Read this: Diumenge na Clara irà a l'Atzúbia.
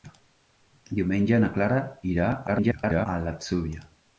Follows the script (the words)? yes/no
no